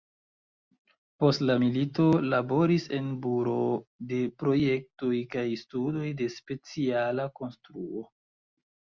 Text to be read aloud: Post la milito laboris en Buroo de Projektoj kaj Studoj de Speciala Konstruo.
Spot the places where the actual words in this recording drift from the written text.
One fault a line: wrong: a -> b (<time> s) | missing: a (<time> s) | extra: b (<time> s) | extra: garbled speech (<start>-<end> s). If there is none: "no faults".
no faults